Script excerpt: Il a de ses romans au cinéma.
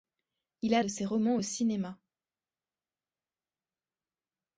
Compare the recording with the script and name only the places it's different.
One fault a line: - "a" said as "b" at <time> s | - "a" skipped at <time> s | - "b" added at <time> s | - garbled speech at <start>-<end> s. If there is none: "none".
none